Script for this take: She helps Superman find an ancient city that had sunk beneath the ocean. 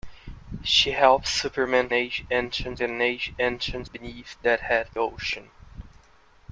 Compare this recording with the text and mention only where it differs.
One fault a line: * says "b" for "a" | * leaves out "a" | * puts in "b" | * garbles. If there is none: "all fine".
* says "ancient" for "find"
* says "beneath" for "city"
* leaves out "sunk beneath the"